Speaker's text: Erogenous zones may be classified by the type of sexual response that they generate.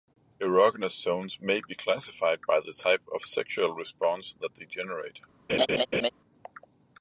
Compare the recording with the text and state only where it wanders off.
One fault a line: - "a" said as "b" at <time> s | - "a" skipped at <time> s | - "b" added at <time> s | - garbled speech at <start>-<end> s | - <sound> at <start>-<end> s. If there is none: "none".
- laugh at 5.5-6.1 s